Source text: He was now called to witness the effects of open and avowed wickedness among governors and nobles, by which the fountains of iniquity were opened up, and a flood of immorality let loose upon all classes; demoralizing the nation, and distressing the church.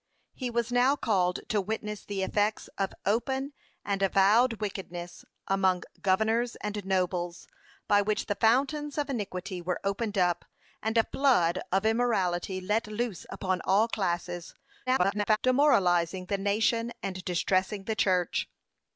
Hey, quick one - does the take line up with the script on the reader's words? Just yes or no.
no